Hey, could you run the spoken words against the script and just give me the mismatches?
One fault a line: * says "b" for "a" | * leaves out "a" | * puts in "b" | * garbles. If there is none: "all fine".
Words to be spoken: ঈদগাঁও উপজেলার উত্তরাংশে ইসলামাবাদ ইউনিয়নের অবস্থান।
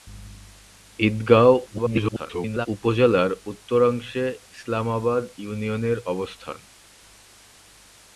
* garbles